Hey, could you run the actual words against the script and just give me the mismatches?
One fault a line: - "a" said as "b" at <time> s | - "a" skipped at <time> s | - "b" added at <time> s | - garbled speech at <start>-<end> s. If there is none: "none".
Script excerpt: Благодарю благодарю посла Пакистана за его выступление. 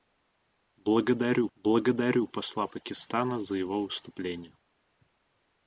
none